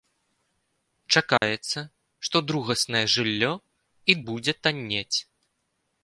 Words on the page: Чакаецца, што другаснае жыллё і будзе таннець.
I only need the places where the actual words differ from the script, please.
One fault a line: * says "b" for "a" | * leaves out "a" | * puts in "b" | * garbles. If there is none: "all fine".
all fine